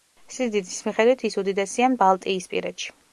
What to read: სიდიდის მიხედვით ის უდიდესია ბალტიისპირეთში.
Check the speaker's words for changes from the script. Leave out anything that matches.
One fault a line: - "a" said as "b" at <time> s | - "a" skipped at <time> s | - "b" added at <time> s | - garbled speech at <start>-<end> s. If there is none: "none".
none